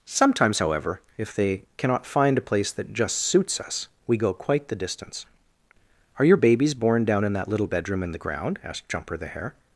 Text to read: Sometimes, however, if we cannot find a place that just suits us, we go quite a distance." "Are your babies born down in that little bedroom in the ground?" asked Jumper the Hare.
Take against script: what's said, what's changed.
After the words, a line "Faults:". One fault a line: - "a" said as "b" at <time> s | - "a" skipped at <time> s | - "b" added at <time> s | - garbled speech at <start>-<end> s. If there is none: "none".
Sometimes, however, if they cannot find a place that just suits us, we go quite the distance." "Are your babies born down in that little bedroom in the ground?" asked Jumper the Hare.
Faults:
- "we" said as "they" at 1.4 s
- "a" said as "the" at 4.7 s